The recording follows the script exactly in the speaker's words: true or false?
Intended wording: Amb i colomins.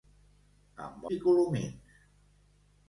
true